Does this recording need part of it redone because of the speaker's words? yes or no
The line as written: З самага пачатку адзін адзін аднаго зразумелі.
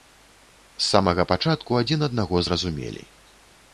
yes